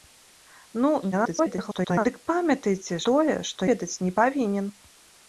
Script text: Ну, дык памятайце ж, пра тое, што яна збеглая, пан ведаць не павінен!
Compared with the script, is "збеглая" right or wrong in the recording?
wrong